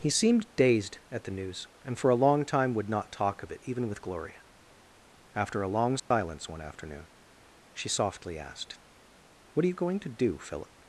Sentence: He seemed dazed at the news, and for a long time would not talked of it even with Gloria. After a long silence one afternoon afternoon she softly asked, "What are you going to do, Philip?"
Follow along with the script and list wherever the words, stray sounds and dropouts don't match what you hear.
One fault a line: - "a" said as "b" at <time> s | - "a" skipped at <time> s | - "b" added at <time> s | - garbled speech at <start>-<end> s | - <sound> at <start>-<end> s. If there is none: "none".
- "talked" said as "talk" at 3.1 s
- dropout at 6.0-6.1 s
- "afternoon" skipped at 7.1 s